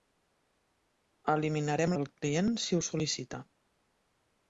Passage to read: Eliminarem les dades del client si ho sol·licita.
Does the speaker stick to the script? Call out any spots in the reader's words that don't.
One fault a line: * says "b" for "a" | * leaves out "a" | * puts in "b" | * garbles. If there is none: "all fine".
* leaves out "les dades"